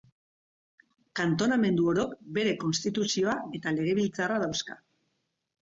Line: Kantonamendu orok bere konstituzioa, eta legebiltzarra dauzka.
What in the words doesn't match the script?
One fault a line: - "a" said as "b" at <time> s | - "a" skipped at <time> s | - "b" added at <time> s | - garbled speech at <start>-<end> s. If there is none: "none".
none